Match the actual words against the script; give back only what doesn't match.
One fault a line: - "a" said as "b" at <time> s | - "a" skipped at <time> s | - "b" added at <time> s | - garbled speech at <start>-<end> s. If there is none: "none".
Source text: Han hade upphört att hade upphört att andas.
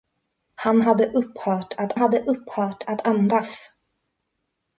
none